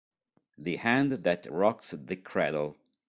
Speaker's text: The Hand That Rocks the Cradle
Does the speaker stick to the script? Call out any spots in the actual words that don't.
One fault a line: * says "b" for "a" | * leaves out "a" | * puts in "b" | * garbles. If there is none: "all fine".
all fine